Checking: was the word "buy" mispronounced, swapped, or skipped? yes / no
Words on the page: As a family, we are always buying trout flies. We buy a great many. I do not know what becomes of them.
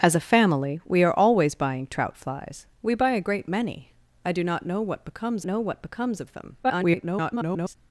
no